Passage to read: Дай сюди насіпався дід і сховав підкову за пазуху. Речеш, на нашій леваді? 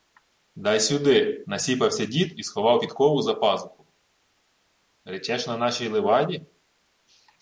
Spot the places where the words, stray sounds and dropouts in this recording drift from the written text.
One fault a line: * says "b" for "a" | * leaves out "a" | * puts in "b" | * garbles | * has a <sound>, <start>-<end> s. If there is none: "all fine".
all fine